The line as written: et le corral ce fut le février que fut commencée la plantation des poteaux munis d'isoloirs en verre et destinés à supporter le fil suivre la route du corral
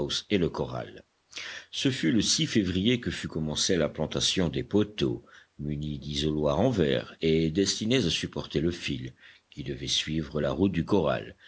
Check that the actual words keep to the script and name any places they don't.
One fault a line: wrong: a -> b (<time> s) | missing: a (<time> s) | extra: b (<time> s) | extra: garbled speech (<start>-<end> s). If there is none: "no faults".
extra: qui devait (9.5 s)